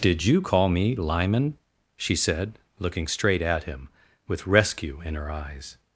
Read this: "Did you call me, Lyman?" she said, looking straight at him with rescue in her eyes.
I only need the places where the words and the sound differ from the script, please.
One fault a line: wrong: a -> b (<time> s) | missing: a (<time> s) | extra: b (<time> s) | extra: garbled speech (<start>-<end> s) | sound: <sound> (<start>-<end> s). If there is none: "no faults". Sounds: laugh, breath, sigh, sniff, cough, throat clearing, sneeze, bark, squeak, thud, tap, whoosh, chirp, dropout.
no faults